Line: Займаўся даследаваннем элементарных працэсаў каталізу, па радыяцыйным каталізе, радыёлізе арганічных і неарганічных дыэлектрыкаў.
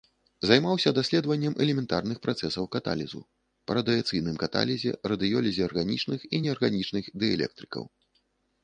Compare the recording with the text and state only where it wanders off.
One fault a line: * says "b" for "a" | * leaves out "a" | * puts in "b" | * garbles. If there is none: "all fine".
all fine